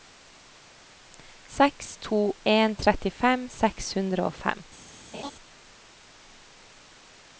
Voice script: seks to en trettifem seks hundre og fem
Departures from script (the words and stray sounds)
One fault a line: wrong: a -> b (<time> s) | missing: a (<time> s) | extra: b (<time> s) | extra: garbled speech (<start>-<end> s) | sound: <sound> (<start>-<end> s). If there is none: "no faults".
sound: laugh (5.1-5.3 s)